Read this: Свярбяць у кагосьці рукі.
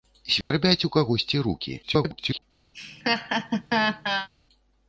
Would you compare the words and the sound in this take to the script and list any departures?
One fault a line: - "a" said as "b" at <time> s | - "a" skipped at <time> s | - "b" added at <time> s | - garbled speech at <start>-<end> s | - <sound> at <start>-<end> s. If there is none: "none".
- dropout at 0.4-0.5 s
- garbled speech at 1.8-2.4 s
- laugh at 2.7-4.3 s